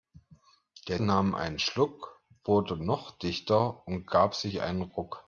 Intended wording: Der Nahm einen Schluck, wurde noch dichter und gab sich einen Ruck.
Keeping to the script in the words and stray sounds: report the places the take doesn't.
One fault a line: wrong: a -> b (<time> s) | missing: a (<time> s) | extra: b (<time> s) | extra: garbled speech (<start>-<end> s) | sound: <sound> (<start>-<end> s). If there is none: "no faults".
no faults